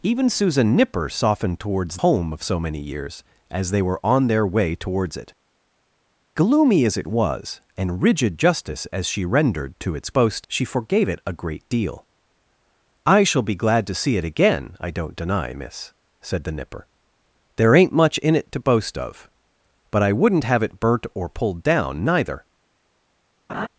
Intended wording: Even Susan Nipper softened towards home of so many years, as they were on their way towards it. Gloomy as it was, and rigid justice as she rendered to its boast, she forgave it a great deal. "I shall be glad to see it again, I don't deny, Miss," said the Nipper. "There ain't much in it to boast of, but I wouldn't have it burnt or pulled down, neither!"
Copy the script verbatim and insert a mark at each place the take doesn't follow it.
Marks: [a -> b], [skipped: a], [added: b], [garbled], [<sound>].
Even Susan Nipper softened towards home of so many years, as they were on their way towards it. Gloomy as it was, and rigid justice as she rendered to its boast, she forgave it a great deal. "I shall be glad to see it again, I don't deny, Miss," said the Nipper. "There ain't much in it to boast of, but I wouldn't have it burnt or pulled down, neither!" [laugh]